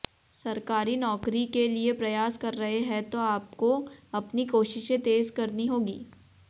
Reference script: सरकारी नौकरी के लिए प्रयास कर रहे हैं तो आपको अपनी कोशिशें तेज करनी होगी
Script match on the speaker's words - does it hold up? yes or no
yes